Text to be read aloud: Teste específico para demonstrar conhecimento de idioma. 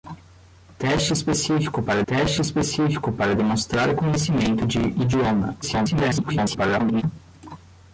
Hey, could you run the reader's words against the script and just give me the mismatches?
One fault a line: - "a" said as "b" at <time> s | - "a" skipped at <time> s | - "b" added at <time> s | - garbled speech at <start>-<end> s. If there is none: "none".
- "teste específico para" added at 2.1 s
- garbled speech at 5.6-7.0 s